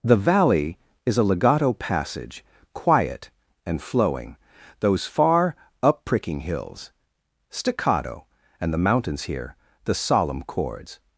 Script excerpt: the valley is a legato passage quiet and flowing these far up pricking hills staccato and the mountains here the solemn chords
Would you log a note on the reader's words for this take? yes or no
yes